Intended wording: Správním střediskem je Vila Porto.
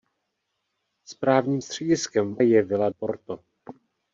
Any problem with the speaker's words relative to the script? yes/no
no